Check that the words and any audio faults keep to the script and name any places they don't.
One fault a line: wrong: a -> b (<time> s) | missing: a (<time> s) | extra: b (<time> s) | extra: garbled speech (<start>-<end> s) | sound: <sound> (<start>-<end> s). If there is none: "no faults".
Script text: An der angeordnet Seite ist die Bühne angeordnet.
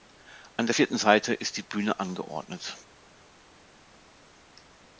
wrong: angeordnet -> vierten (0.7 s)